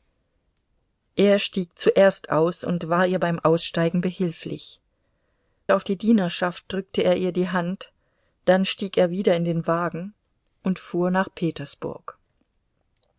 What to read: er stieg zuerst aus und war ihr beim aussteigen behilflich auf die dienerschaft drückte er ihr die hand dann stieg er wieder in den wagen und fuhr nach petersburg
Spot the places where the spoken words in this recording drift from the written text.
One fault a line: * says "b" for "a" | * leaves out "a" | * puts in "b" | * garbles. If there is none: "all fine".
all fine